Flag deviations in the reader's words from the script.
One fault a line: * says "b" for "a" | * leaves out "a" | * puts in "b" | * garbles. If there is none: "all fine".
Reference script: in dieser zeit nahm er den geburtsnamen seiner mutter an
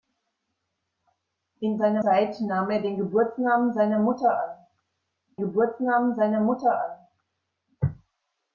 * says "seiner" for "dieser"
* puts in "geburtsnamen seiner mutter"